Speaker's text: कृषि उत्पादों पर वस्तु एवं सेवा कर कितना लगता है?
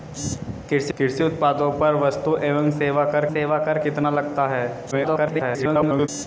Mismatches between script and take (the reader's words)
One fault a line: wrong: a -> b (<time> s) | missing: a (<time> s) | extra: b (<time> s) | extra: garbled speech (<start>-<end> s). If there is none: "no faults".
extra: कृषि (1.0 s)
extra: सेवा कर (3.3 s)
extra: garbled speech (4.9-6.1 s)